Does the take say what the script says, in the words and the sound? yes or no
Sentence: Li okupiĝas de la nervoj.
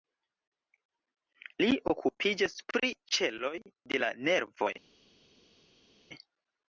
no